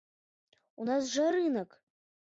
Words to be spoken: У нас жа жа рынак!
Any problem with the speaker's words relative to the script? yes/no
yes